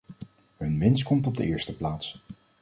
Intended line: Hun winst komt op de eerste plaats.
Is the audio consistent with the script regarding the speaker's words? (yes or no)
yes